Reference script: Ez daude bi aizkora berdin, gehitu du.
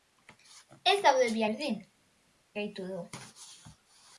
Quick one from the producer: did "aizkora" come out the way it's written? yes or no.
no